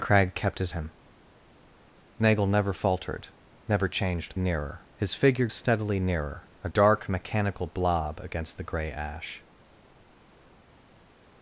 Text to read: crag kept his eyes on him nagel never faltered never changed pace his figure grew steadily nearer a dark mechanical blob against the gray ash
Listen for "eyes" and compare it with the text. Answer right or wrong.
wrong